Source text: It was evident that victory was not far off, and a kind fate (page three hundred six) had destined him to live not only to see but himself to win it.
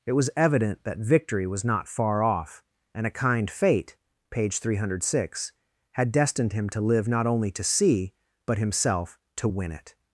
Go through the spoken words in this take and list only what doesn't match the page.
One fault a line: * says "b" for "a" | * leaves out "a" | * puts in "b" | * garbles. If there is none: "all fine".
all fine